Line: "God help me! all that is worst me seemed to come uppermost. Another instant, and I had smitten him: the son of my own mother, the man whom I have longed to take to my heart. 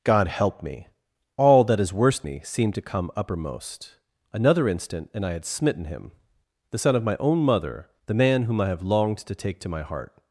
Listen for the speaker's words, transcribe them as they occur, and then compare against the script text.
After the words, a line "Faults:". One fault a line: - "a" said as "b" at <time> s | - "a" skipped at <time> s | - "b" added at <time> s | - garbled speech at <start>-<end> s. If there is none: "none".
"God help me! all that is worst me seemed to come uppermost. Another instant, and I had smitten him: the son of my own mother, the man whom I have longed to take to my heart.
Faults:
none